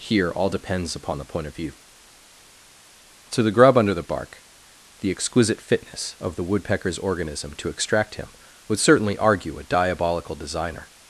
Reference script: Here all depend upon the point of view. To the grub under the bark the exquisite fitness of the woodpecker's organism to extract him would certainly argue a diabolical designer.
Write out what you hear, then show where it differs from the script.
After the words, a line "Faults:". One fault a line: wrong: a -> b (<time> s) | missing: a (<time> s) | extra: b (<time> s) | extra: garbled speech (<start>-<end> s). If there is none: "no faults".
Here all depends upon the point of view. To the grub under the bark the exquisite fitness of the woodpecker's organism to extract him would certainly argue a diabolical designer.
Faults:
wrong: depend -> depends (0.5 s)